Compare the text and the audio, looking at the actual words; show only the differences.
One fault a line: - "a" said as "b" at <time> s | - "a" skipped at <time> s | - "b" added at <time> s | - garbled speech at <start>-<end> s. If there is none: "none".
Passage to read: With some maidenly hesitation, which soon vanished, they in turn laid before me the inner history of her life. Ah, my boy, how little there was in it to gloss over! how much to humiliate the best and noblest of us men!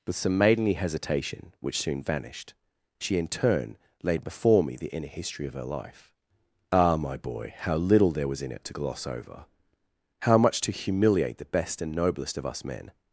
- "they" said as "she" at 3.0 s